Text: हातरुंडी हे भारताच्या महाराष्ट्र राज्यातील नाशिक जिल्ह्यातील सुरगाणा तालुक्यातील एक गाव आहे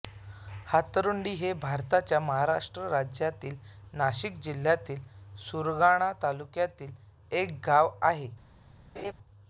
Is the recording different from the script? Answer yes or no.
no